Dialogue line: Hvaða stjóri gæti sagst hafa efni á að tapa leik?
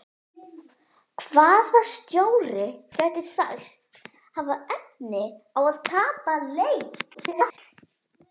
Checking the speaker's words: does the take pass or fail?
fail